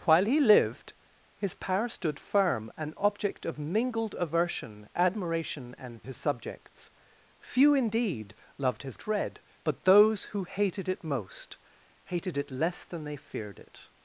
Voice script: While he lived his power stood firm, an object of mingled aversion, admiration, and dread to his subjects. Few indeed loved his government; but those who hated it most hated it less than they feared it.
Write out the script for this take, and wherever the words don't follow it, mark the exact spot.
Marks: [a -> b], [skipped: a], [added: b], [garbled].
While he lived his power stood firm, an object of mingled aversion, admiration, and [skipped: dread to] his subjects. Few indeed loved his [government; -> dread] but those who hated it most hated it less than they feared it.